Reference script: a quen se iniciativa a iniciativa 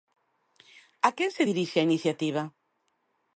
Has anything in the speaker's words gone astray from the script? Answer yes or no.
yes